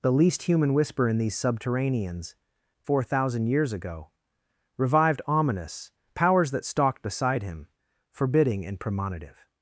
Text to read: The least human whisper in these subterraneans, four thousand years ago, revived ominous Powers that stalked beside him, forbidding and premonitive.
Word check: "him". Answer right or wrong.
right